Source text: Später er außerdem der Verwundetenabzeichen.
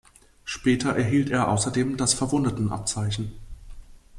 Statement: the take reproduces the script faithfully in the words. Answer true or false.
false